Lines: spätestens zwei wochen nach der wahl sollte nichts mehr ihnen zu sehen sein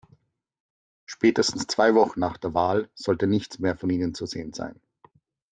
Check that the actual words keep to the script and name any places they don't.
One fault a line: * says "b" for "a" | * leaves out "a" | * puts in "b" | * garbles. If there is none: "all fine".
* puts in "von"